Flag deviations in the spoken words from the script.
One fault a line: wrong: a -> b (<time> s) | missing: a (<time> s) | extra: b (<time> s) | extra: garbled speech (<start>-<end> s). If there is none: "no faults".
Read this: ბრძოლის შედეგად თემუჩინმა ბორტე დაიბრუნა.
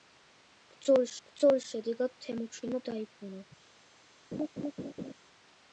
extra: ბრძოლის (1.3 s)
missing: ბორტე (2.8 s)